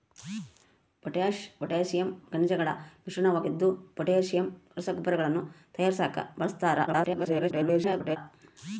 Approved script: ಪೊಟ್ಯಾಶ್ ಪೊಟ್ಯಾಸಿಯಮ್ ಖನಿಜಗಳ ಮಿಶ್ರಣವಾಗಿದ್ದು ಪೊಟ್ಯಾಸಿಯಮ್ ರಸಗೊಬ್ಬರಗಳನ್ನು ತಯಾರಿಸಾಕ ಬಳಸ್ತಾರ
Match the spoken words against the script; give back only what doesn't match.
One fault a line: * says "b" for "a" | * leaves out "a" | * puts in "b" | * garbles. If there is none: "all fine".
* garbles